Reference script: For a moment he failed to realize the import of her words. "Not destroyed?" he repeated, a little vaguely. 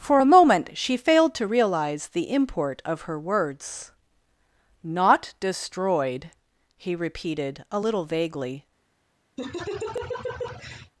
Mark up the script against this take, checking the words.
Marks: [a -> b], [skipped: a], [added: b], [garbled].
For a moment [he -> she] failed to realize the import of her words. "Not destroyed?" he repeated, a little vaguely.